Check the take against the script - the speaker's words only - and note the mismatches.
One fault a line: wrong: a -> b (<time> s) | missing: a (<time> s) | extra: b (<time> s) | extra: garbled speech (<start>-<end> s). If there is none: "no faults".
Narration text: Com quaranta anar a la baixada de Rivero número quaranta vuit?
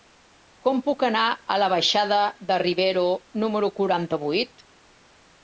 wrong: quaranta -> puc (0.9 s)